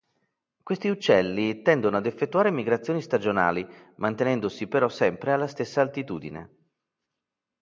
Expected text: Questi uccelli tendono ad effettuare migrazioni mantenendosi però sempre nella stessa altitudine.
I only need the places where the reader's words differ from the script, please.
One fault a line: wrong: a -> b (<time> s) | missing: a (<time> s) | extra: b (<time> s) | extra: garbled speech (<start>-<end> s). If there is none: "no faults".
extra: stagionali (3.0 s)
wrong: nella -> alla (5.3 s)